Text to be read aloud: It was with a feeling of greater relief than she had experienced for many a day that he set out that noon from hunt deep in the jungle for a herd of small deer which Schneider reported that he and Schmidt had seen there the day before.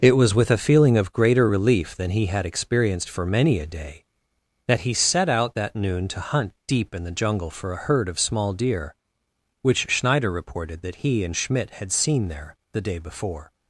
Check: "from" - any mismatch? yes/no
yes